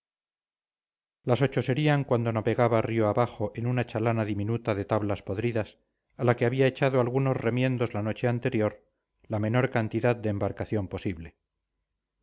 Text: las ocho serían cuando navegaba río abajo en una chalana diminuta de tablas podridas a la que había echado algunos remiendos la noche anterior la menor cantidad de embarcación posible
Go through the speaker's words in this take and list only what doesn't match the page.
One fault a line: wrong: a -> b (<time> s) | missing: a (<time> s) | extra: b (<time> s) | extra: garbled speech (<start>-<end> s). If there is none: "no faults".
no faults